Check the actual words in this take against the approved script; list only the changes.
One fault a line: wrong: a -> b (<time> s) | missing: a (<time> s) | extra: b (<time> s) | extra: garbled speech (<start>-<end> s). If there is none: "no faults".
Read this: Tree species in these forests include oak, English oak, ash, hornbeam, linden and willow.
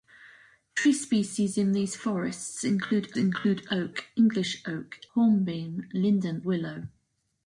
extra: include (3.1 s)
missing: ash (5.0 s)
missing: and (6.4 s)